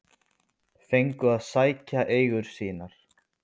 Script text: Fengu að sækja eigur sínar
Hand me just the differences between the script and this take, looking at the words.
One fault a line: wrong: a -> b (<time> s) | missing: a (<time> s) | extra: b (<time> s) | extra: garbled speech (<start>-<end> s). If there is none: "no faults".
no faults